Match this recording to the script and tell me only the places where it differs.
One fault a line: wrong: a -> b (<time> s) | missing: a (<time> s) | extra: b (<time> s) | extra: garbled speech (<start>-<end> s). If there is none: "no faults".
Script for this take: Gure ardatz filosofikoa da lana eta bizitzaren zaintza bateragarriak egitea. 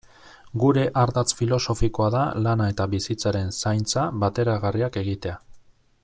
no faults